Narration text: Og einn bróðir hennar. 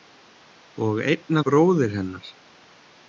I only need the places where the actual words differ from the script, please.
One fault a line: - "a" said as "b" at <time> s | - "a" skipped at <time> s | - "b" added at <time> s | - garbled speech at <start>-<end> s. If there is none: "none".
none